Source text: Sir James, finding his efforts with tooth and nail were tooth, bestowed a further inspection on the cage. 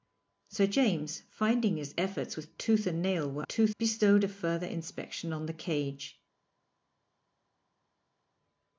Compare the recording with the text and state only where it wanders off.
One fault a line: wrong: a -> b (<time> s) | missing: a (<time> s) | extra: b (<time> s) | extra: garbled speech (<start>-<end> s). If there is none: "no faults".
no faults